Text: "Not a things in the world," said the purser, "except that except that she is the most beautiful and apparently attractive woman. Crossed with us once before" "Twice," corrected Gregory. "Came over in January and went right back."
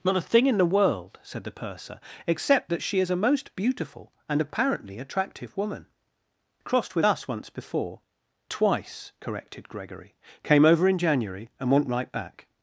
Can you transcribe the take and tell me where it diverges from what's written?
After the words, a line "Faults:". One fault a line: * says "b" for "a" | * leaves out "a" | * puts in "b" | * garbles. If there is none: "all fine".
"Not a thing in the world," said the purser, "except that she is a most beautiful and apparently attractive woman. Crossed with us once before" "Twice," corrected Gregory. "Came over in January and went right back."
Faults:
* says "thing" for "things"
* leaves out "except that"
* says "a" for "the"